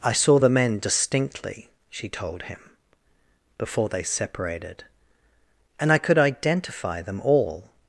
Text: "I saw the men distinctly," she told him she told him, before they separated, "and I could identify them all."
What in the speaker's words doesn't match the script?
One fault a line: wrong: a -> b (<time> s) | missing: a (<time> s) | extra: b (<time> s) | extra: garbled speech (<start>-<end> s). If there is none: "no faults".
missing: she told him (2.6 s)